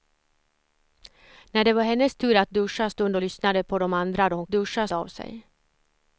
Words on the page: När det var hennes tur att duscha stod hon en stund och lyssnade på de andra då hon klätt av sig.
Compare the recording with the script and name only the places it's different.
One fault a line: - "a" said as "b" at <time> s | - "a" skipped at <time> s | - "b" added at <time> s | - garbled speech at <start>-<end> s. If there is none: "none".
- "stod hon en" skipped at 2.9 s
- "klätt" said as "duscha" at 4.5 s